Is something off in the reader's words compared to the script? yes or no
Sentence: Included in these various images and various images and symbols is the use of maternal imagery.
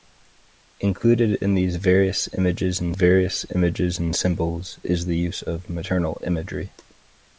no